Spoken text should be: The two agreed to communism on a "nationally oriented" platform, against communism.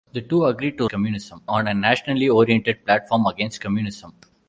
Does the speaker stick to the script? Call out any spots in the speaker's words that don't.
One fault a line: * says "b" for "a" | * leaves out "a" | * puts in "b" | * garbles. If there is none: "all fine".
all fine